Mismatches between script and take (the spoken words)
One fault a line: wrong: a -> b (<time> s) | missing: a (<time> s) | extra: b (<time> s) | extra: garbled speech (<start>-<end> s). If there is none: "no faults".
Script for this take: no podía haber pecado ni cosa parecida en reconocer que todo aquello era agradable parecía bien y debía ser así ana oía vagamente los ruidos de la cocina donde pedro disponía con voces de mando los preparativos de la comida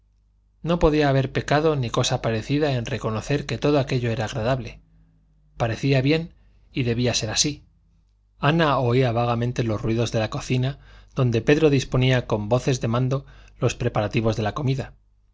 no faults